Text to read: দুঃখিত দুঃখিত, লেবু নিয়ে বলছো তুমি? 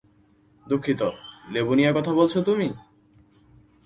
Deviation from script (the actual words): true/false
true